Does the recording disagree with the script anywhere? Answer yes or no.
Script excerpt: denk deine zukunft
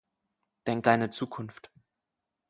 no